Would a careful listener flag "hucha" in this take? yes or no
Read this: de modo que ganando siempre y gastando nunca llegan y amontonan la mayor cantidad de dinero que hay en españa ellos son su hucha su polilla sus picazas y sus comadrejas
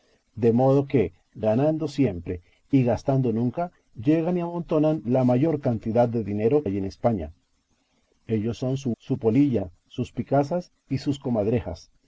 yes